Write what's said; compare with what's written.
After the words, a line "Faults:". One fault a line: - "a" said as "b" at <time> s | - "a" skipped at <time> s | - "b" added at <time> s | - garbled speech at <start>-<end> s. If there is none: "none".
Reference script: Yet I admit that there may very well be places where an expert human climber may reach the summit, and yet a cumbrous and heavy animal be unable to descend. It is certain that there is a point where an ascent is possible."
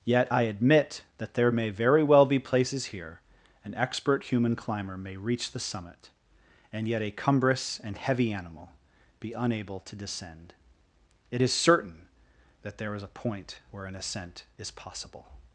Yet I admit that there may very well be places here an expert human climber may reach the summit, and yet a cumbrous and heavy animal be unable to descend. It is certain that there is a point where an ascent is possible."
Faults:
- "where" said as "here" at 2.9 s